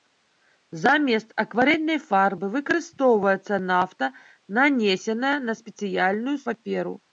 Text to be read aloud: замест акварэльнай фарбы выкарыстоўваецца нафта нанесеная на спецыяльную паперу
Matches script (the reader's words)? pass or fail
pass